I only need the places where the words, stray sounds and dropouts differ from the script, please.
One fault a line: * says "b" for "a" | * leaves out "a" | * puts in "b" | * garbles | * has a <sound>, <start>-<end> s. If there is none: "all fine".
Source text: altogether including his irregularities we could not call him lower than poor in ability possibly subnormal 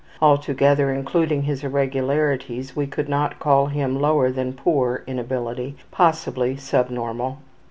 all fine